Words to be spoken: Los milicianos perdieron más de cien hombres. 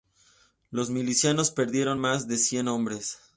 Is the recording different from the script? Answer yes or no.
no